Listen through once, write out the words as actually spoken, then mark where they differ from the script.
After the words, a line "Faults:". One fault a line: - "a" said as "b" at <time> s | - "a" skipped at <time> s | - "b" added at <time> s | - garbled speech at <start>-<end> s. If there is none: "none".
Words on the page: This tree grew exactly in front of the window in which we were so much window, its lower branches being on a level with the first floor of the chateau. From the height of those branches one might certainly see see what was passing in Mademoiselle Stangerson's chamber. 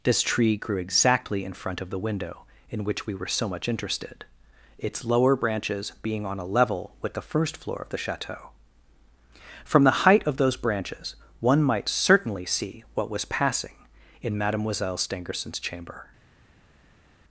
This tree grew exactly in front of the window in which we were so much interested, its lower branches being on a level with the first floor of the chateau. From the height of those branches one might certainly see what was passing in Mademoiselle Stangerson's chamber.
Faults:
- "window" said as "interested" at 3.7 s
- "see" skipped at 12.8 s